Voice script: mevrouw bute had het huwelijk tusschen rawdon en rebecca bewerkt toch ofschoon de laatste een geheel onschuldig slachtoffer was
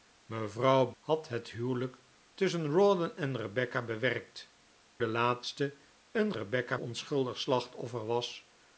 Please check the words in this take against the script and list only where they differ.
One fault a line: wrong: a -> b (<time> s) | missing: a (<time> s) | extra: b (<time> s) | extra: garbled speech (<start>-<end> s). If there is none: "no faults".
missing: bute (0.9 s)
missing: toch ofschoon (4.5 s)
wrong: geheel -> rebecca (6.3 s)